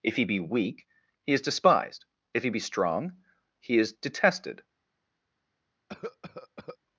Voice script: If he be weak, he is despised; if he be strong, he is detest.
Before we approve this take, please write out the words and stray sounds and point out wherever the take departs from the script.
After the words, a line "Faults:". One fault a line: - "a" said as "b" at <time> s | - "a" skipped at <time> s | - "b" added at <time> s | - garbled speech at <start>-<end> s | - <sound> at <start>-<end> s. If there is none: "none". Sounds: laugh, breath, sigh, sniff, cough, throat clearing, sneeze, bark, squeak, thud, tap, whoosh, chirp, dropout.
If he be weak, he is despised; if he be strong, he is detested.
Faults:
- "detest" said as "detested" at 3.9 s
- cough at 5.9-6.8 s